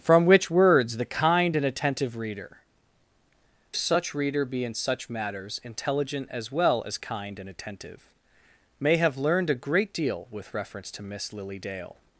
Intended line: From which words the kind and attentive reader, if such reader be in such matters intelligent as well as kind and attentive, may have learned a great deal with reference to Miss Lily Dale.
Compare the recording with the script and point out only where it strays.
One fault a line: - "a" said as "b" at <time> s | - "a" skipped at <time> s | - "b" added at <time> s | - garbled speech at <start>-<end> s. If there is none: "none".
- "if" skipped at 2.6 s